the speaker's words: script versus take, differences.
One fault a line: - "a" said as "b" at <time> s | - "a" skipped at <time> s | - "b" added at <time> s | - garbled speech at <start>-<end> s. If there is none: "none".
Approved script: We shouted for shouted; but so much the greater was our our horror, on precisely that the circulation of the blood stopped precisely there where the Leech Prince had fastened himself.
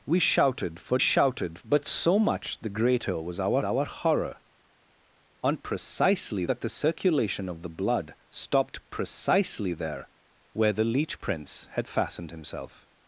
none